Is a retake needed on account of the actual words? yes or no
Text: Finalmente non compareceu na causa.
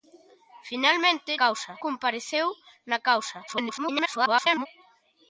yes